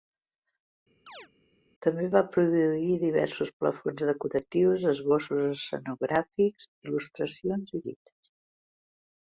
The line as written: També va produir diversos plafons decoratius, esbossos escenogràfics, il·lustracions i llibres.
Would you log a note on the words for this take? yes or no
no